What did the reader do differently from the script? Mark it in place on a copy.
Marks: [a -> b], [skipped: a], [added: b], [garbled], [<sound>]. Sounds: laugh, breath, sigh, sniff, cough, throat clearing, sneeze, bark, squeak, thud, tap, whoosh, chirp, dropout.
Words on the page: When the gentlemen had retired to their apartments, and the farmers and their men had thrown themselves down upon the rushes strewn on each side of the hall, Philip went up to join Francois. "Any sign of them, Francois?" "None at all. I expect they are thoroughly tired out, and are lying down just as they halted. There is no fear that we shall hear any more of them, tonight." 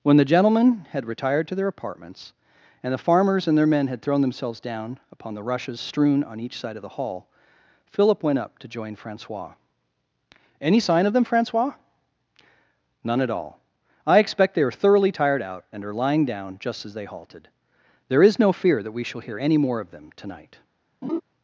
When the gentlemen had retired to their apartments, and the farmers and their men had thrown themselves down upon the rushes strewn on each side of the hall, Philip went up to join Francois. "Any sign of them, Francois?" "None at all. I expect they are thoroughly tired out, and are lying down just as they halted. There is no fear that we shall hear any more of them, tonight." [laugh]